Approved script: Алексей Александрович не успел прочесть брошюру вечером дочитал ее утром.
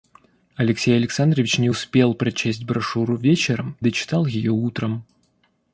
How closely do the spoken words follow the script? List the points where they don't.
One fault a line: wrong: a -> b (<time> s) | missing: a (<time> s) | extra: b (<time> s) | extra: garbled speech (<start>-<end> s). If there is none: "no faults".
no faults